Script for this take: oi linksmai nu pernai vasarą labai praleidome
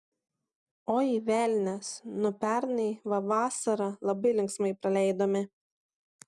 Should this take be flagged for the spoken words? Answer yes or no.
yes